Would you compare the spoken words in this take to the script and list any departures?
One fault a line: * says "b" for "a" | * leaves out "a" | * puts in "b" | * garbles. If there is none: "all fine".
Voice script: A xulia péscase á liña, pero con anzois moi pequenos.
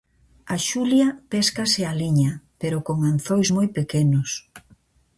all fine